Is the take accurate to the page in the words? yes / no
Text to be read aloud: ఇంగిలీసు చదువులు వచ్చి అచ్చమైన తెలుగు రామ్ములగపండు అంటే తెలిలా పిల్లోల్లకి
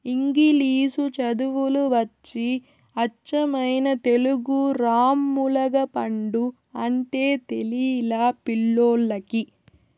yes